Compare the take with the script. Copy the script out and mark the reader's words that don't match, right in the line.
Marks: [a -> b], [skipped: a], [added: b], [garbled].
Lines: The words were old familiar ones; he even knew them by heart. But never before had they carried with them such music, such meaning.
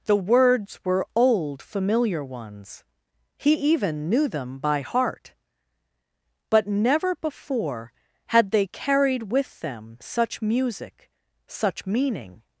The words were old familiar ones; he even knew them by heart. But never before had they carried with them such music, such meaning.